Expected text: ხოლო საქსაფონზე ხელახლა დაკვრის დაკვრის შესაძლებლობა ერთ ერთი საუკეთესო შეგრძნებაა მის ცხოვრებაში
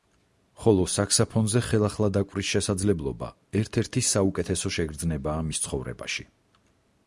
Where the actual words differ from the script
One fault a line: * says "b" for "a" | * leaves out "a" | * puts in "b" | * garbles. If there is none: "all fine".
* leaves out "დაკვრის"